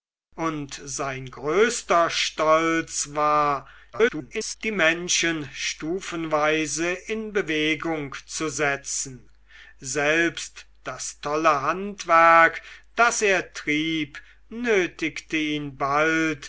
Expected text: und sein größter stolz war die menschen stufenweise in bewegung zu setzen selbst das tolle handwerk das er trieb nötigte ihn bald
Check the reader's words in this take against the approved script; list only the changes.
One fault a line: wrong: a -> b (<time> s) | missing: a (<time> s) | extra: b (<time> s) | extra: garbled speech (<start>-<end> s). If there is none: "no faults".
extra: garbled speech (3.9-4.6 s)